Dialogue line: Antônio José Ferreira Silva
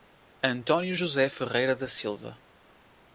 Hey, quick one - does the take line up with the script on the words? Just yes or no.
no